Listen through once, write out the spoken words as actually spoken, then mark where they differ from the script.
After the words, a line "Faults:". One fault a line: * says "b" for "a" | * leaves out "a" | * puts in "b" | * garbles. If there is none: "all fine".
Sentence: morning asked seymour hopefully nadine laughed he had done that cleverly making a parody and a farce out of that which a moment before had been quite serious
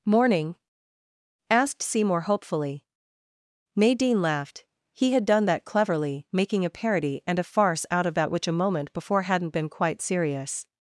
morning asked seymour hopefully nadine laughed he had done that cleverly making a parody and a farce out of that which a moment before hadn't been quite serious
Faults:
* says "hadn't" for "had"